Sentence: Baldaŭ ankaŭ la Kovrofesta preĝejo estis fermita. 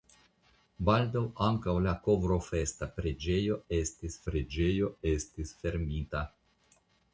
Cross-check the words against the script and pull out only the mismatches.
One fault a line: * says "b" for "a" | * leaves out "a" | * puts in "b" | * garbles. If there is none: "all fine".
* puts in "preĝejo estis"